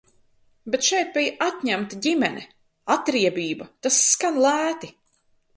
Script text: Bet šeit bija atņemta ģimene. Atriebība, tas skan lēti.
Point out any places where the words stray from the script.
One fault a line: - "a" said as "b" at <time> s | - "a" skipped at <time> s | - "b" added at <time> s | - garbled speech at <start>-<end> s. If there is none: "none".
none